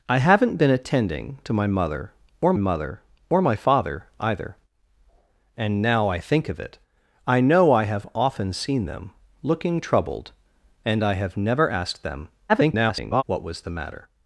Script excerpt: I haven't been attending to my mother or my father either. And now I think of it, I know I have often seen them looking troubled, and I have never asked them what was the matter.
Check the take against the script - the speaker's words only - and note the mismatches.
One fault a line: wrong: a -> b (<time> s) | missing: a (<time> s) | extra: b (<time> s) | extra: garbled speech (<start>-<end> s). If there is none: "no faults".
extra: mother or (2.6 s)
extra: garbled speech (12.5-13.2 s)